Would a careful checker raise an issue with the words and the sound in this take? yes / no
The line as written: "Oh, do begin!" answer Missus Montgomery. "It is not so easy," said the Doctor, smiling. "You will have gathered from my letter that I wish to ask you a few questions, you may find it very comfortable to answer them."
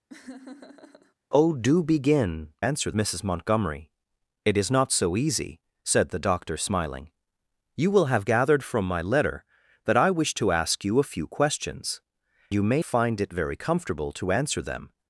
yes